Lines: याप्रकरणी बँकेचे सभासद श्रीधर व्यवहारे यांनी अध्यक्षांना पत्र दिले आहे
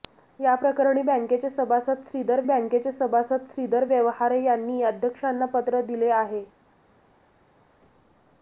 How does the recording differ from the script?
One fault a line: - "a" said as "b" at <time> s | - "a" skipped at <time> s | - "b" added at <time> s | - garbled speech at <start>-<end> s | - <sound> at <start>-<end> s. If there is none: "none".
- "बँकेचे सभासद श्रीधर" added at 2.4 s